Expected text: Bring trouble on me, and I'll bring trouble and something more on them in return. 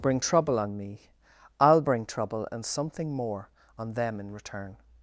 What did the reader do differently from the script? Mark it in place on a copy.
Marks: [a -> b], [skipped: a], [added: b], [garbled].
Bring trouble on me, [skipped: and] I'll bring trouble and something more on them in return.